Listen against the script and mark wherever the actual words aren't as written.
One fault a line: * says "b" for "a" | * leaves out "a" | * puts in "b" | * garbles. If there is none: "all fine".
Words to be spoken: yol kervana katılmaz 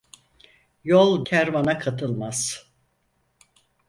all fine